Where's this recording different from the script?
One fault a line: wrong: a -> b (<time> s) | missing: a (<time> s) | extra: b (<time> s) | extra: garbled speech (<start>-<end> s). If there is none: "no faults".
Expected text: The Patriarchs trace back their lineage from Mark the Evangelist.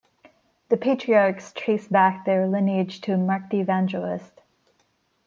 wrong: from -> to (3.0 s)